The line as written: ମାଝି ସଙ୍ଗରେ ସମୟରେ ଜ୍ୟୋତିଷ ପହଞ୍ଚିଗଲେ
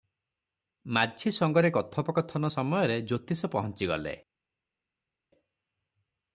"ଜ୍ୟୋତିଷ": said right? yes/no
yes